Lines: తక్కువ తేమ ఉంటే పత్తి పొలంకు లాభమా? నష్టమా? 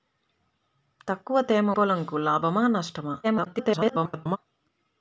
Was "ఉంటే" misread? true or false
true